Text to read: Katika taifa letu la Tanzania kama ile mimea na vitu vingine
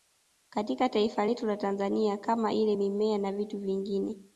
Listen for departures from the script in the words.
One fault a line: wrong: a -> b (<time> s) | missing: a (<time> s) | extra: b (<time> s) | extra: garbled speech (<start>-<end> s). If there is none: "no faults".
no faults